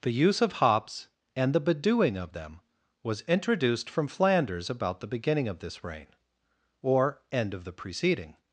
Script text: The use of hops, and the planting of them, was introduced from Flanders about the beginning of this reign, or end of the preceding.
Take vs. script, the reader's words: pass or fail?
fail